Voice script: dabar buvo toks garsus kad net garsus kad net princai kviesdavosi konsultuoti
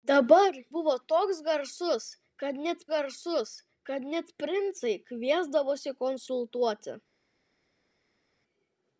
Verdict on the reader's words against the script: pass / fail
pass